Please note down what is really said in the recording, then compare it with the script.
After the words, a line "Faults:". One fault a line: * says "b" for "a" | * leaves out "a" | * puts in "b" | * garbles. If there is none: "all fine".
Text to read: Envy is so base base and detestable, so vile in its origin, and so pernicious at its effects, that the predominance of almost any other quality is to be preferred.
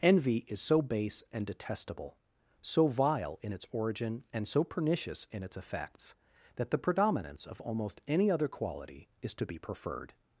Envy is so base and detestable, so vile in its origin, and so pernicious in its effects, that the predominance of almost any other quality is to be preferred.
Faults:
* leaves out "base"
* says "in" for "at"